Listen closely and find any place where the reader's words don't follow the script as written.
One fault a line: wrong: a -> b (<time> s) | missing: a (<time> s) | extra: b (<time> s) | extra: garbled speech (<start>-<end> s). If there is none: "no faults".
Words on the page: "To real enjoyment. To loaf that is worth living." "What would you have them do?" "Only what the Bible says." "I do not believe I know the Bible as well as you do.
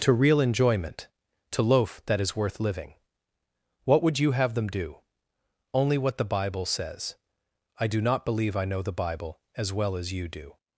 no faults